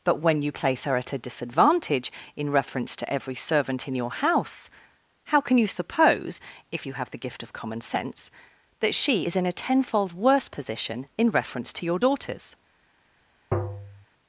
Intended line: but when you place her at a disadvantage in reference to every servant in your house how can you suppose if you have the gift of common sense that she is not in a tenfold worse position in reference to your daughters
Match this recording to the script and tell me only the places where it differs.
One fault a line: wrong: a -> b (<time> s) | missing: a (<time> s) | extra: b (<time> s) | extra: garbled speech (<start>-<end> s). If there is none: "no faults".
missing: not (9.3 s)